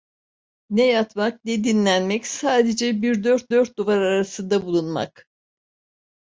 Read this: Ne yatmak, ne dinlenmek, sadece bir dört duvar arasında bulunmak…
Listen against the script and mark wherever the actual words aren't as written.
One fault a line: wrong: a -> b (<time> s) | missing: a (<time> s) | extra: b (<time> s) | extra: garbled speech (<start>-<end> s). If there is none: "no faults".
extra: dört (3.5 s)